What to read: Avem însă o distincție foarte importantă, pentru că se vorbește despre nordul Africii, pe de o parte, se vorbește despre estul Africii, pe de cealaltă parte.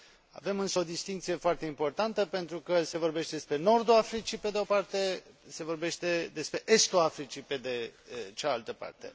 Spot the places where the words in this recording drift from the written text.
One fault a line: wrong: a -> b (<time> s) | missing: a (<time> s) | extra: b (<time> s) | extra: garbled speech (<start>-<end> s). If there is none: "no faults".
no faults